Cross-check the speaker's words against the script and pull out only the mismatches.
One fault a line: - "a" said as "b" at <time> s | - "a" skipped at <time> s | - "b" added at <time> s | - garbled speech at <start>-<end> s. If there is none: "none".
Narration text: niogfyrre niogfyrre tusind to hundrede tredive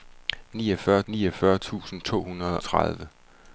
none